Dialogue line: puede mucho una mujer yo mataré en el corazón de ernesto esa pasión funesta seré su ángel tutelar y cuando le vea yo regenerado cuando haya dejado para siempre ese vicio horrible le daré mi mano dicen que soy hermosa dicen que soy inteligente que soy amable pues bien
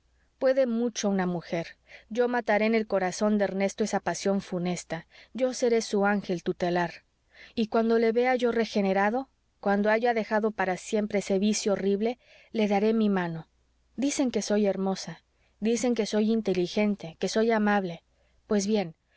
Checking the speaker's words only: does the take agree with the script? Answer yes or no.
no